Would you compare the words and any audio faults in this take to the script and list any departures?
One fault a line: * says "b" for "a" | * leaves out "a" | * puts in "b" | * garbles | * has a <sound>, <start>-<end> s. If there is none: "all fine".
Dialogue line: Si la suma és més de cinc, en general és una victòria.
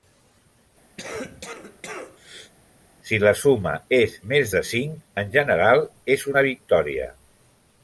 * has a cough, 1.0-2.5 s